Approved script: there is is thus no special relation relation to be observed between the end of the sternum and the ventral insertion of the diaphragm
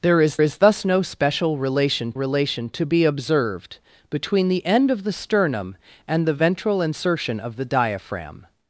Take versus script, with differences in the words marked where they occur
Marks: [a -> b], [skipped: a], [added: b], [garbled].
there is is thus no special relation relation to be observed between the end of the sternum and the ventral insertion of the diaphragm